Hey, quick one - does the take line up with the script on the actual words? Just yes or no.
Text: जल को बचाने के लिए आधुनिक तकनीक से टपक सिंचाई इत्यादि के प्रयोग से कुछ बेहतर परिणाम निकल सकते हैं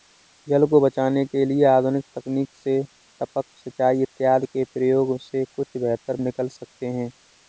no